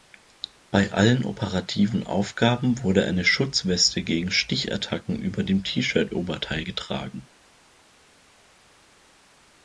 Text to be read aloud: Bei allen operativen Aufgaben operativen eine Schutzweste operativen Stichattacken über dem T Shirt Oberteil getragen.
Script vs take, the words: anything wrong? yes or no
yes